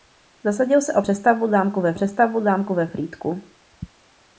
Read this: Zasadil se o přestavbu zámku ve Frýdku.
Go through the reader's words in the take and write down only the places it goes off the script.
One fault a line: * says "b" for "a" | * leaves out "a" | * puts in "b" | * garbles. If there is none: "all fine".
* puts in "přestavbu zámku ve"